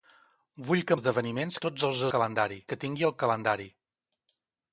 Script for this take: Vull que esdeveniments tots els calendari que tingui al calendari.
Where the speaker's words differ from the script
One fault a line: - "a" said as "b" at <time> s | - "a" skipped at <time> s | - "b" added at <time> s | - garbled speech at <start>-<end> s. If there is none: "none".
none